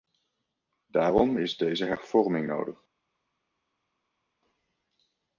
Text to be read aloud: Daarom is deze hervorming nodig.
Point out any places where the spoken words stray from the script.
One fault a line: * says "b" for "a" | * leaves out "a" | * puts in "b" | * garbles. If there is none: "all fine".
all fine